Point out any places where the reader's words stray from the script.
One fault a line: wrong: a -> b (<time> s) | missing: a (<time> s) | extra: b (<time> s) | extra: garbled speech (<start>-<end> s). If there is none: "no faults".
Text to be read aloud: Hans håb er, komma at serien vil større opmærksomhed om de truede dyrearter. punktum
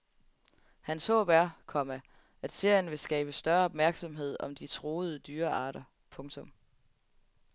extra: skabe (3.0 s)